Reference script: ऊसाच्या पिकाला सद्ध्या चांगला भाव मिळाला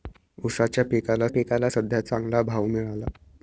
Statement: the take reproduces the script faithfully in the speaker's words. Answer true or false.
false